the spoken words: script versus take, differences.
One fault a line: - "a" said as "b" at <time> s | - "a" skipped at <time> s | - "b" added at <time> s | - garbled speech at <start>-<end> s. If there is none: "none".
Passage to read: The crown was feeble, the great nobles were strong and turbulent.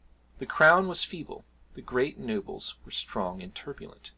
none